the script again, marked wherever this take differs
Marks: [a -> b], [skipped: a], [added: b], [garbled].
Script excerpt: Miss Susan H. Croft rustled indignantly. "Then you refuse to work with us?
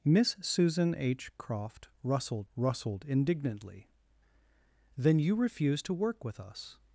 Miss Susan H. Croft rustled [added: rustled] indignantly. "Then you refuse to work with us?